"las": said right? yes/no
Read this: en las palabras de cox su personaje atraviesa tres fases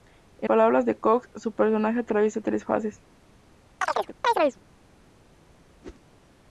no